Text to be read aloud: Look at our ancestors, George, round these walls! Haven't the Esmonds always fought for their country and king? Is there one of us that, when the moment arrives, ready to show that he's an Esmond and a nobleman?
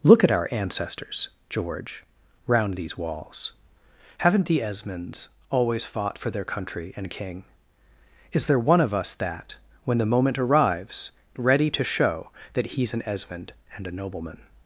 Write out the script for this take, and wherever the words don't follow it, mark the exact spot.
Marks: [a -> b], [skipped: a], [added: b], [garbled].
Look at our ancestors, George, round these walls! Haven't the Esmonds always fought for their country and king? Is there one of us that, when the moment arrives, ready to show that he's an Esmond and a nobleman?